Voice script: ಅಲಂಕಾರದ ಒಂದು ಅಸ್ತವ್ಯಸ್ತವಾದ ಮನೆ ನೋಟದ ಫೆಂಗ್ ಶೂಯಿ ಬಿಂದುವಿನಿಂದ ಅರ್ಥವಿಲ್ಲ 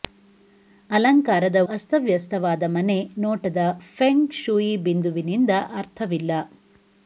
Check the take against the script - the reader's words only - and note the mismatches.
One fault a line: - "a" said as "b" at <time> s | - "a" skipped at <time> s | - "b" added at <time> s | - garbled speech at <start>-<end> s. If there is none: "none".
- "ಒಂದು" skipped at 1.6 s